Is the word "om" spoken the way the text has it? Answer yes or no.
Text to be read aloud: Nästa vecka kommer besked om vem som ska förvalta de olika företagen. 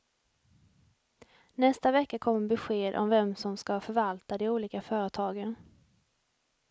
yes